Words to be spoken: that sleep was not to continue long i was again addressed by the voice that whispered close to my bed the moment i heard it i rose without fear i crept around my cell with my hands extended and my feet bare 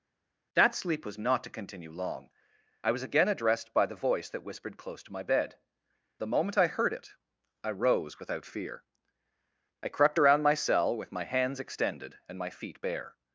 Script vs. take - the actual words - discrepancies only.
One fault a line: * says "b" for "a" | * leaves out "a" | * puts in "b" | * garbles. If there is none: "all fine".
all fine